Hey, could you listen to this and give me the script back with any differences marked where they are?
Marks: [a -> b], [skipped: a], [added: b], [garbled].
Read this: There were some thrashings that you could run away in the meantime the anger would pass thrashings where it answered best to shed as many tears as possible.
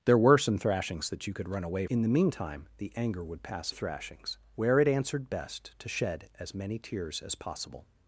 There were some thrashings that you could run away in the meantime the anger would pass thrashings where it answered best to shed as many tears as possible.